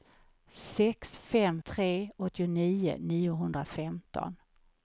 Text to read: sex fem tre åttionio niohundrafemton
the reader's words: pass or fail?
pass